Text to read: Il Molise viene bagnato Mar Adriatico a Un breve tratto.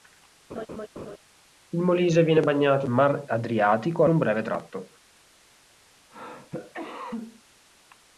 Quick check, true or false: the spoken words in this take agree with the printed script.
true